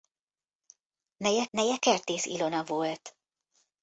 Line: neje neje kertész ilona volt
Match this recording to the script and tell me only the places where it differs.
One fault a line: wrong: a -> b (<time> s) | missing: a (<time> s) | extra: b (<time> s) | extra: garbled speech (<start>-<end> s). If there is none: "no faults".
no faults